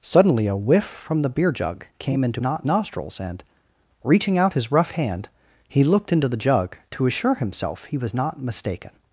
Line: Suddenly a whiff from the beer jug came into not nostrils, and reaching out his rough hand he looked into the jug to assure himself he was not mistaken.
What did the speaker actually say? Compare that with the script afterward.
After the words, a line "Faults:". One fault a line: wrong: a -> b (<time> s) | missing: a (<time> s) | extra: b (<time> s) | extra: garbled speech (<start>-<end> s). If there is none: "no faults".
Suddenly a whiff from the beer jug came into not nostrils, and reaching out his rough hand he looked into the jug to assure himself he was not mistaken.
Faults:
no faults